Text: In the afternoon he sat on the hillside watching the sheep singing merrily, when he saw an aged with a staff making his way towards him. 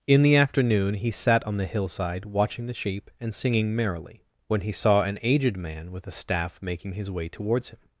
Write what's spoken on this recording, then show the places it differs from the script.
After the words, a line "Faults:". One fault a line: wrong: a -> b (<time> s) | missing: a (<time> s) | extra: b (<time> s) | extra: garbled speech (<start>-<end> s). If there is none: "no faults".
In the afternoon he sat on the hillside watching the sheep and singing merrily, when he saw an aged man with a staff making his way towards him.
Faults:
extra: and (3.2 s)
extra: man (5.5 s)